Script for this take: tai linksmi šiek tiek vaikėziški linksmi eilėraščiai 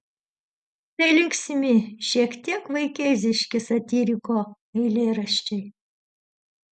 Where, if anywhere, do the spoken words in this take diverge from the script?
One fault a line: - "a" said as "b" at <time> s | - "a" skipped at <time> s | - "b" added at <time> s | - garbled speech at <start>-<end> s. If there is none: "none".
- "linksmi" said as "satyriko" at 3.7 s